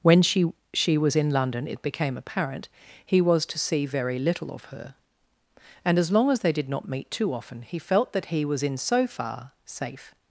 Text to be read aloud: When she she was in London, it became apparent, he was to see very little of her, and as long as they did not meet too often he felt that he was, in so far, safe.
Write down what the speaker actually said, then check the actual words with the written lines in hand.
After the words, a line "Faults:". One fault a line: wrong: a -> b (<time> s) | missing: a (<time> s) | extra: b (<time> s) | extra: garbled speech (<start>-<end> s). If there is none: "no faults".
When she she was in London, it became apparent, he was to see very little of her, and as long as they did not meet too often he felt that he was, in so far, safe.
Faults:
no faults